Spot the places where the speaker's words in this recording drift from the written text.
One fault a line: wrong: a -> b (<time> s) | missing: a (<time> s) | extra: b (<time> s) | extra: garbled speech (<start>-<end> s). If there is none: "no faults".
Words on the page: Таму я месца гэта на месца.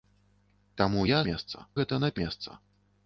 no faults